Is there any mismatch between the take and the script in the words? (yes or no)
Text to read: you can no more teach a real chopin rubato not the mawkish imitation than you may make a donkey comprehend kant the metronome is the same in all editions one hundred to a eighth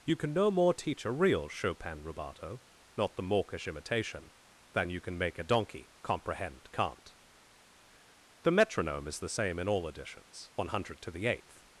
yes